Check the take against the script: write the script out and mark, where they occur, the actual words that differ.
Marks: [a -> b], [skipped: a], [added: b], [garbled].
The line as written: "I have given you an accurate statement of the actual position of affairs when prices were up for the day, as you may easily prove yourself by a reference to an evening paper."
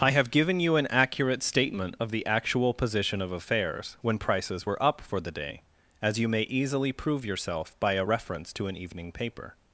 "I have given you an accurate statement of the actual position of affairs when prices were up for the day, as you may easily prove yourself by a reference to an evening paper."